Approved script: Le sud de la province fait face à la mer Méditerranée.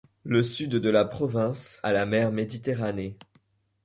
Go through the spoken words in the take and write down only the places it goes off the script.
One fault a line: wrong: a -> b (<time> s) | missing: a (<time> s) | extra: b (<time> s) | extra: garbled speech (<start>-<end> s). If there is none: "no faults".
missing: fait face (1.8 s)